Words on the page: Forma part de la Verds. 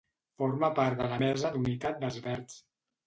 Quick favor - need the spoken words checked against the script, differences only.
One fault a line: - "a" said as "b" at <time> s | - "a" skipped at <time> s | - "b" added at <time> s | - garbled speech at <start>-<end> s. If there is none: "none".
- "Mesa d'Unitat dels" added at 1.2 s